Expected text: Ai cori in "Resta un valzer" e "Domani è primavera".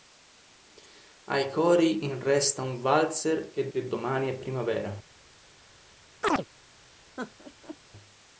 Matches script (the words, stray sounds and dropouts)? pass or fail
fail